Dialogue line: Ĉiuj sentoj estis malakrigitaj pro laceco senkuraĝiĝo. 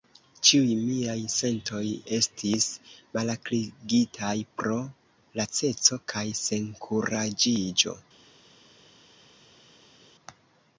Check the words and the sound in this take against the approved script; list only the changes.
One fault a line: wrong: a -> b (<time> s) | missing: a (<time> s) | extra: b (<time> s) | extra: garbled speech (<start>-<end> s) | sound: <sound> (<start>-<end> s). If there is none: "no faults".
extra: miaj (0.8 s)
extra: kaj (6.2 s)